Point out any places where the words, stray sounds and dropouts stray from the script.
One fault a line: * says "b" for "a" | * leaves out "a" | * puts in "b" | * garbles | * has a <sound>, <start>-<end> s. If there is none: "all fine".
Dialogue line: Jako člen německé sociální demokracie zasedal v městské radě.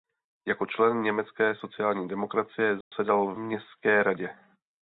* has a dropout, 2.8-2.9 s